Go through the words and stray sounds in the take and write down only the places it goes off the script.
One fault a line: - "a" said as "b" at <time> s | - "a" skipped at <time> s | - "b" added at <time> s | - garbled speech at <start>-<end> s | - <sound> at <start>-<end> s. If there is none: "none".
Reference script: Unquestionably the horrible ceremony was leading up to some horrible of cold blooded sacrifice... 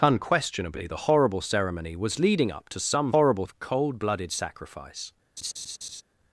- laugh at 5.4-6.0 s